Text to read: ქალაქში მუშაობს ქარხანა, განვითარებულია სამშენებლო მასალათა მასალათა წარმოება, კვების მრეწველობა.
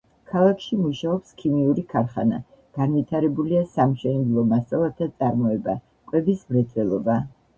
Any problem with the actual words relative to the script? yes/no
yes